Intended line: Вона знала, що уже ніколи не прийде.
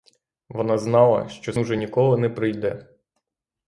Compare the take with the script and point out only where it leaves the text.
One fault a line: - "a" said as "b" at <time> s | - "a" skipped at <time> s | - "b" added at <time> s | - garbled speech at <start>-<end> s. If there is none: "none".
none